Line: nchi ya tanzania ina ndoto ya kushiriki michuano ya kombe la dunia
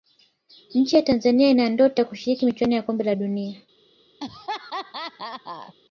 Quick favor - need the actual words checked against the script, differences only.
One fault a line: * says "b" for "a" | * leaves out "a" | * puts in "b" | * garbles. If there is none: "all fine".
all fine